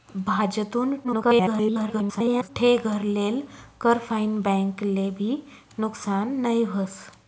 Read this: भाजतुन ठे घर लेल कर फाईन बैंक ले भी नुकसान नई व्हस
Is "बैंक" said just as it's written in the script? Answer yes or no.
yes